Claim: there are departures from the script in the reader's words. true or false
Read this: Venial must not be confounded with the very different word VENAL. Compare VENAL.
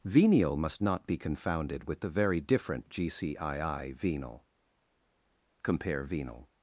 true